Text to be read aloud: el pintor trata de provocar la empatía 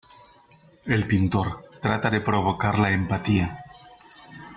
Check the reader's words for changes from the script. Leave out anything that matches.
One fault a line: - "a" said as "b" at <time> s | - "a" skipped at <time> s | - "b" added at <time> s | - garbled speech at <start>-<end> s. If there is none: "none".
none